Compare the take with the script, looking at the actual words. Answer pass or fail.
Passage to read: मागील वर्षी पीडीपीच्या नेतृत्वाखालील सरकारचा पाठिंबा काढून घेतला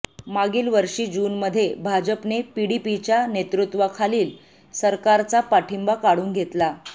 fail